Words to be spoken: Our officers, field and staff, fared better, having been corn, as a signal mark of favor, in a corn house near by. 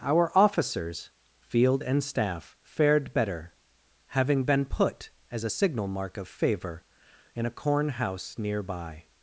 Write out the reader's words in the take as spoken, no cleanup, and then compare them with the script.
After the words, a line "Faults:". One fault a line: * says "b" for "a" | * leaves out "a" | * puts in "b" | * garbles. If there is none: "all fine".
Our officers, field and staff, fared better, having been put, as a signal mark of favor, in a corn house near by.
Faults:
* says "put" for "corn"